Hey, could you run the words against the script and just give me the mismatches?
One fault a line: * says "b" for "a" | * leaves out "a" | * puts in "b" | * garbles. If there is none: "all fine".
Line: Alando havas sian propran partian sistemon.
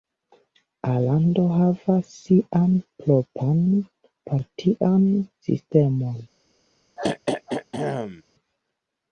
all fine